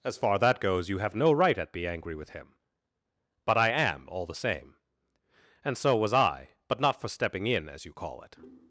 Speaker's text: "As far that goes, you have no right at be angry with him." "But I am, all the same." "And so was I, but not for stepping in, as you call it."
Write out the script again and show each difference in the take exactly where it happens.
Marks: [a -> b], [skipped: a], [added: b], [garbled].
"As far that goes, you have no right at be angry with him." "But I am, all the same." "And so was I, but not for stepping in, as you call it."